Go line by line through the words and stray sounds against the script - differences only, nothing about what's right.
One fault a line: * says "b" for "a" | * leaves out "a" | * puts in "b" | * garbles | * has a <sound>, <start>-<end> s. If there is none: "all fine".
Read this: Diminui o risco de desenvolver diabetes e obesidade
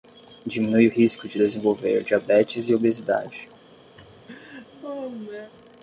* has a laugh, 4.0-5.5 s